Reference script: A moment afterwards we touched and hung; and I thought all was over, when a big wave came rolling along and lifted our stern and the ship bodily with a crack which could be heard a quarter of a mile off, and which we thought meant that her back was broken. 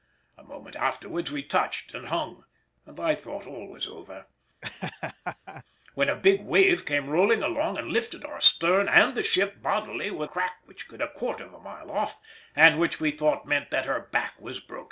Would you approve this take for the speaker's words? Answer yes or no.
no